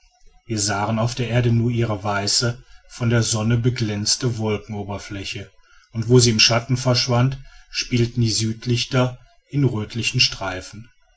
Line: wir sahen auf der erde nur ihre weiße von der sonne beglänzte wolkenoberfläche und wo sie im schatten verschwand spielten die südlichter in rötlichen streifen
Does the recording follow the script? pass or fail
pass